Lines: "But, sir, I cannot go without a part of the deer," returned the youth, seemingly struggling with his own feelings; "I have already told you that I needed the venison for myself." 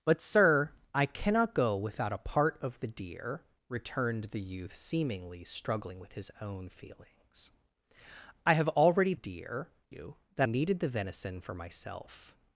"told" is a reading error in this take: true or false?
true